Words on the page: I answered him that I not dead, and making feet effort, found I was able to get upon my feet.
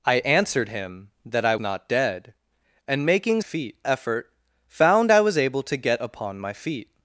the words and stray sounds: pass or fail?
pass